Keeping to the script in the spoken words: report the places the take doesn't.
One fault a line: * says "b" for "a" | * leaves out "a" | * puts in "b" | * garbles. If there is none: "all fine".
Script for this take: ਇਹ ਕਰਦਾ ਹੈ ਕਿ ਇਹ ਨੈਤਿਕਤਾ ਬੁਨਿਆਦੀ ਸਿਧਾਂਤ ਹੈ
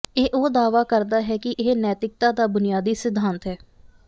* puts in "ਉਹ ਦਾਅਵਾ"
* puts in "ਦਾ"